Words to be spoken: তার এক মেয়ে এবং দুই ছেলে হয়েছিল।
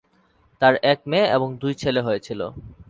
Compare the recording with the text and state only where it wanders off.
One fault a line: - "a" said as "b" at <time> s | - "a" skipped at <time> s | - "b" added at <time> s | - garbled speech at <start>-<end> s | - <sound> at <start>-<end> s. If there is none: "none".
none